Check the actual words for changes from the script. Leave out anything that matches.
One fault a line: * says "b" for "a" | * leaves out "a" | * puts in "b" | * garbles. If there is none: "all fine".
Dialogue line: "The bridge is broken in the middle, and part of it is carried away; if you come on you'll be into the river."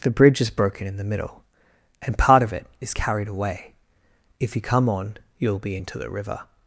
all fine